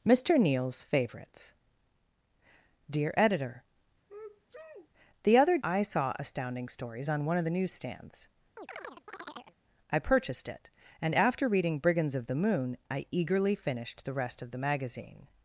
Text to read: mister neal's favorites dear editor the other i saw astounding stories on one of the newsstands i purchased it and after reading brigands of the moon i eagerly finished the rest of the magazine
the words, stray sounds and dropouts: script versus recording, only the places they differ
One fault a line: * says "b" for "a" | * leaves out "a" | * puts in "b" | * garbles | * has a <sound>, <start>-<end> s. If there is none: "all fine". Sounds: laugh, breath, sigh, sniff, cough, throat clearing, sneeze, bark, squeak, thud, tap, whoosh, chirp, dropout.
* has a sneeze, 4.1-4.9 s
* has a chirp, 8.6-9.6 s